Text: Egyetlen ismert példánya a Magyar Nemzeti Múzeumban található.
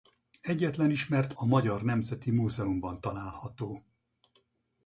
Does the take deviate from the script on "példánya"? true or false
true